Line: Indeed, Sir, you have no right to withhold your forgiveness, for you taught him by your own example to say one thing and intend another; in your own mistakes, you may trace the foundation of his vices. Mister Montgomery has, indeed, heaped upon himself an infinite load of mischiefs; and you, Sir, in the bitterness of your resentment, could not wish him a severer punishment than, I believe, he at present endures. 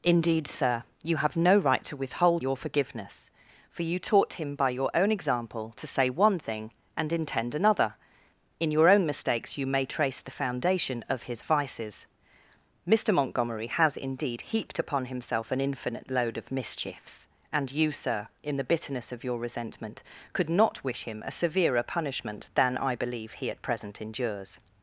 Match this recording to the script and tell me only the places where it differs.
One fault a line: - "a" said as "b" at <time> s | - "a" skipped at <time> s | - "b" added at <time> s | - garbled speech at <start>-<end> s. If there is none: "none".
none